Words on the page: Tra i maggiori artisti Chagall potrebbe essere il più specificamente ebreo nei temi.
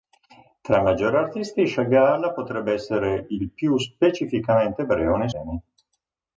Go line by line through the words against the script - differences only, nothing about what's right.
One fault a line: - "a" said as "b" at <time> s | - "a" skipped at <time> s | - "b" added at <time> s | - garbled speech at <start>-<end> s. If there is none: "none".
none